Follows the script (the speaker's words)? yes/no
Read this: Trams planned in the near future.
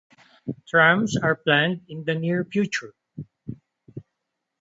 no